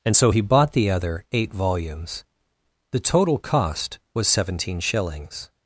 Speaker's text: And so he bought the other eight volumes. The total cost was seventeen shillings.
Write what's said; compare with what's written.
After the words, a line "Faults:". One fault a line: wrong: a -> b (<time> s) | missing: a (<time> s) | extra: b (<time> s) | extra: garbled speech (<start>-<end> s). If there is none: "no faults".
And so he bought the other eight volumes. The total cost was seventeen shillings.
Faults:
no faults